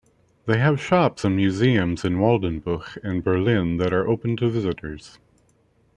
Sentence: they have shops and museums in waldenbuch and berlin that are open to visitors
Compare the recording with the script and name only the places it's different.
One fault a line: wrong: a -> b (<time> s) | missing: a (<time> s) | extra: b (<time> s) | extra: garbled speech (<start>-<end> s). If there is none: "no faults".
no faults